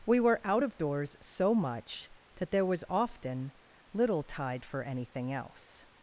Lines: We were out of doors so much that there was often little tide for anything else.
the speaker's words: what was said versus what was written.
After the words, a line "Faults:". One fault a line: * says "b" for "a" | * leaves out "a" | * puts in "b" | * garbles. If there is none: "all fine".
We were out of doors so much that there was often little tide for anything else.
Faults:
all fine